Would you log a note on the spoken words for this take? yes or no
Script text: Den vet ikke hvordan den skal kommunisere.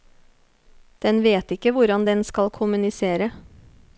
no